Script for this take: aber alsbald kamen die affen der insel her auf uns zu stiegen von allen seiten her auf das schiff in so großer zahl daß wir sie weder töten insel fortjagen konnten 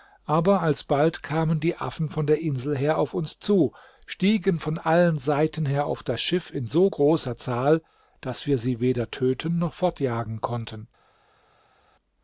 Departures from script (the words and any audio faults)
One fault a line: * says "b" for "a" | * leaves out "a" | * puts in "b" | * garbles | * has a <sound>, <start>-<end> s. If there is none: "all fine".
* puts in "von"
* says "noch" for "insel"